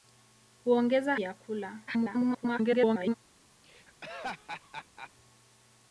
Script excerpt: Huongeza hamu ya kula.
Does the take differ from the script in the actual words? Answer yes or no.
yes